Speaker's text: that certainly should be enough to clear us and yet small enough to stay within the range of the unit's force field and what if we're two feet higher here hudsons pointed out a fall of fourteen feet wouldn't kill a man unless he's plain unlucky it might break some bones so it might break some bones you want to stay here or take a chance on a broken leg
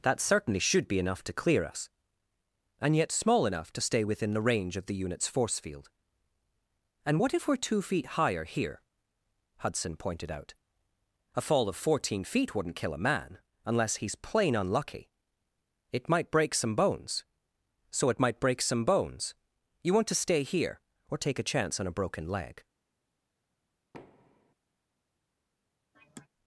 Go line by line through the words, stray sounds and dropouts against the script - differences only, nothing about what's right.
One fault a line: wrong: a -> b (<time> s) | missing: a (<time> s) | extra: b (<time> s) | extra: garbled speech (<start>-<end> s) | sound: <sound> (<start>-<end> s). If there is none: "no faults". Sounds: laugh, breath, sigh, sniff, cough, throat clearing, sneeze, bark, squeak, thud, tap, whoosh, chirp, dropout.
wrong: hudsons -> hudson (9.6 s)
sound: thud (23.9-24.5 s)
sound: sigh (25.9-26.3 s)